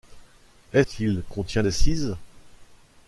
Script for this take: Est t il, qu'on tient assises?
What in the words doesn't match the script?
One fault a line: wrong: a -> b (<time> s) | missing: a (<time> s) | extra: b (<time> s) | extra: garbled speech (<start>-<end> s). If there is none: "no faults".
no faults